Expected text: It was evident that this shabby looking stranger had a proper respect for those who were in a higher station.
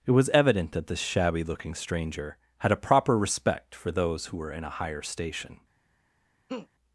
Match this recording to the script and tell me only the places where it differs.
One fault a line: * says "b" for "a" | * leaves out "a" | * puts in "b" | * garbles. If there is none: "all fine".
all fine